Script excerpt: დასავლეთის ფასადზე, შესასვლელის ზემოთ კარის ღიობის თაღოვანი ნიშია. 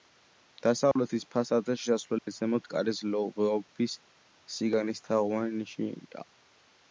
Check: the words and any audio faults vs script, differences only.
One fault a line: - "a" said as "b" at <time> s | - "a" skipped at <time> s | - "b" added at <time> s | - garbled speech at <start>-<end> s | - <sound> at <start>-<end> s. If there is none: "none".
- dropout at 0.9-1.0 s
- dropout at 2.2-2.3 s
- "სიგანის" added at 4.6 s